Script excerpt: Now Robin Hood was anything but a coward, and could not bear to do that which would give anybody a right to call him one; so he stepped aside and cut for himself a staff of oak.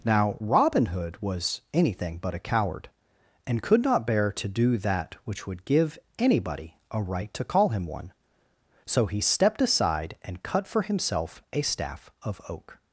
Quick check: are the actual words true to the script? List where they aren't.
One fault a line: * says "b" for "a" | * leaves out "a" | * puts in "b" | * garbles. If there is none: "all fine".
all fine